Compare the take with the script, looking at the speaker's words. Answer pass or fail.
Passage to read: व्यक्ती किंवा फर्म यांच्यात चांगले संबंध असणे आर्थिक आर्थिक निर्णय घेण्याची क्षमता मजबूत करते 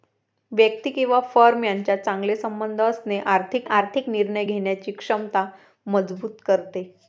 pass